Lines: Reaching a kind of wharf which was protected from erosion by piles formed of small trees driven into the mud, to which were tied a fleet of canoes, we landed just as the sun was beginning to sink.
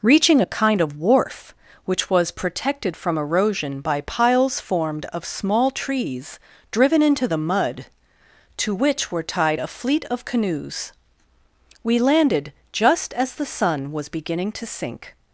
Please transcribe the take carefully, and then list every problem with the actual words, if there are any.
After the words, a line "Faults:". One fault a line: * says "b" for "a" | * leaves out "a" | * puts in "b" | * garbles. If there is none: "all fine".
Reaching a kind of wharf which was protected from erosion by piles formed of small trees driven into the mud, to which were tied a fleet of canoes, we landed just as the sun was beginning to sink.
Faults:
all fine